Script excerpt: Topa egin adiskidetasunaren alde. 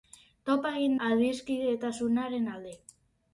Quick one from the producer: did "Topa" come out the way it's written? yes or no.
yes